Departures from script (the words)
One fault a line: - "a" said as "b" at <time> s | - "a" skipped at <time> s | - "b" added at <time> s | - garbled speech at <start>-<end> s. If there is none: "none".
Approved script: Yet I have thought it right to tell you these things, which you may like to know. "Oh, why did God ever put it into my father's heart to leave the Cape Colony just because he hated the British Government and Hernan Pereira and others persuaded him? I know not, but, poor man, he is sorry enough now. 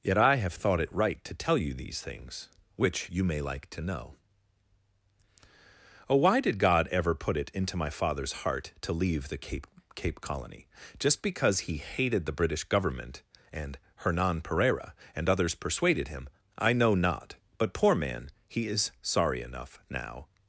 - "Cape" added at 10.0 s